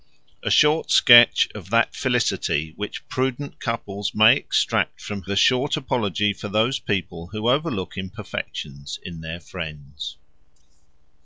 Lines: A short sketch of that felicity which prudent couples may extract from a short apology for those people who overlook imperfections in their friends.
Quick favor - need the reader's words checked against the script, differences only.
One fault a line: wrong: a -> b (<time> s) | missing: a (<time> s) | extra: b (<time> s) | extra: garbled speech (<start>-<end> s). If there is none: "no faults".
no faults